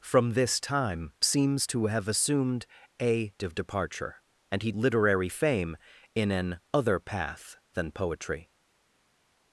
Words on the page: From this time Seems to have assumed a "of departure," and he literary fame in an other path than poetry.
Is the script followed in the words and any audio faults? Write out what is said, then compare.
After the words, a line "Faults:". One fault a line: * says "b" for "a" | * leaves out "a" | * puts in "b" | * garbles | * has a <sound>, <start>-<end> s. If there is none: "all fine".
From this time Seems to have assumed a "of departure," and he literary fame in an other path than poetry.
Faults:
all fine